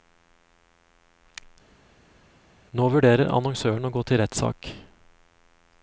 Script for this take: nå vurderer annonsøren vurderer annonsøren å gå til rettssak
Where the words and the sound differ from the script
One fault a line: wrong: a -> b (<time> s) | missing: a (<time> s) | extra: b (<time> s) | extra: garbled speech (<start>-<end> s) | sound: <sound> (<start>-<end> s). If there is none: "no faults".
missing: vurderer annonsøren (3.9 s)